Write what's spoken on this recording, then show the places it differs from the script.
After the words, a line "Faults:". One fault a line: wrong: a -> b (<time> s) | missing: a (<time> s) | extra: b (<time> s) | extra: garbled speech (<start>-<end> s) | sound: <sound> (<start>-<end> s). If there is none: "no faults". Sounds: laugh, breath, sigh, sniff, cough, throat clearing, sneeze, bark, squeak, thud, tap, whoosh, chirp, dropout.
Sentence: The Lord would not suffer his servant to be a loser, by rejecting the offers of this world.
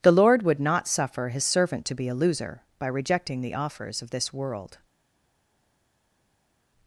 The Lord would not suffer his servant to be a loser, by rejecting the offers of this world.
Faults:
no faults